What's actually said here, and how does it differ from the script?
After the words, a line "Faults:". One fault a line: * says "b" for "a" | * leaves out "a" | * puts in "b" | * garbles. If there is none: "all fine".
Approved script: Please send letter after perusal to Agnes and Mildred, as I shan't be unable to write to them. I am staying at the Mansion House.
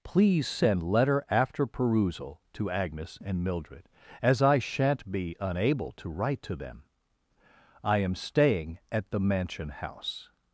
Please send letter after perusal to Agnes and Mildred, as I shan't be unable to write to them. I am staying at the Mansion House.
Faults:
all fine